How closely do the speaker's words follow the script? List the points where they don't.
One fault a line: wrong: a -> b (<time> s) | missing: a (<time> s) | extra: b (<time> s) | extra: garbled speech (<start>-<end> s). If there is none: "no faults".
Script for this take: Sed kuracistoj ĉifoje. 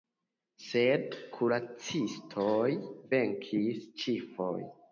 extra: venkis (3.2 s)